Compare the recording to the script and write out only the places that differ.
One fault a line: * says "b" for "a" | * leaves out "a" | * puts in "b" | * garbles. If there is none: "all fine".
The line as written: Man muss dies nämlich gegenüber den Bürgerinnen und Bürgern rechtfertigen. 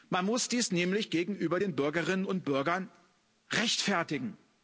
all fine